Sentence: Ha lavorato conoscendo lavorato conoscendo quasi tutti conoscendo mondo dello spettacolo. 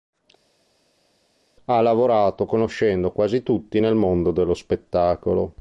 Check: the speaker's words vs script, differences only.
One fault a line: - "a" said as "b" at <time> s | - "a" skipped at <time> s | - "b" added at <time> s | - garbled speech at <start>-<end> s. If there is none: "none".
- "lavorato conoscendo" skipped at 3.1 s
- "conoscendo" said as "nel" at 3.8 s